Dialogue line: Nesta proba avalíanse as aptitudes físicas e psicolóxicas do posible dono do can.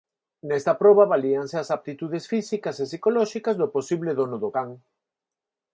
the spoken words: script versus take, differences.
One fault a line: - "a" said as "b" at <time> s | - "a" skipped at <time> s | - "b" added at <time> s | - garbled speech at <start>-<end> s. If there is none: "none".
none